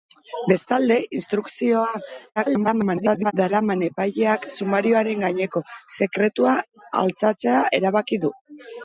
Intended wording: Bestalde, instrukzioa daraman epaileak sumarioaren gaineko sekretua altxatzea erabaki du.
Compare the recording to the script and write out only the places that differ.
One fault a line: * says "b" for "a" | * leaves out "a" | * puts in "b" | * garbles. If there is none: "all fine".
* garbles